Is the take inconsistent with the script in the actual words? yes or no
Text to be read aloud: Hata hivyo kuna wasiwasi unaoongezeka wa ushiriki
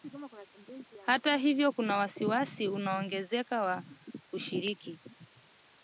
no